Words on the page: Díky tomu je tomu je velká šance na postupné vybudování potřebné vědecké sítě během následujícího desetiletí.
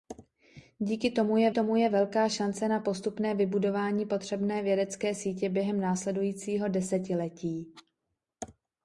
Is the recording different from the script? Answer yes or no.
no